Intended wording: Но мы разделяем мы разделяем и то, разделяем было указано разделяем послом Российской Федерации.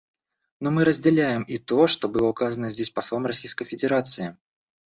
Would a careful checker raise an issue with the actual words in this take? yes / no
yes